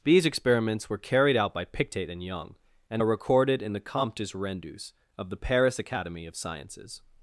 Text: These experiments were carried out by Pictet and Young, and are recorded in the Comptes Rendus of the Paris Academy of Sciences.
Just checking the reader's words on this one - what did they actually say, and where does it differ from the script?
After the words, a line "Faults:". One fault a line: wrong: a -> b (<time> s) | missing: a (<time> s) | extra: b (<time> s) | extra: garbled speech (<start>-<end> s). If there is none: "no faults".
These experiments were carried out by Pictet and Young, and are recorded in the Comptes Rendus of the Paris Academy of Sciences.
Faults:
no faults